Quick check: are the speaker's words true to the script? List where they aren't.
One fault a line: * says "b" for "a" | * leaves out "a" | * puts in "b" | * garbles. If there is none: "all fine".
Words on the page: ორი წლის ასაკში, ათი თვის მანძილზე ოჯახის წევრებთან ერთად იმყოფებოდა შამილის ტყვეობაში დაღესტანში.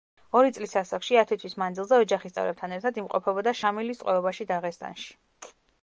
all fine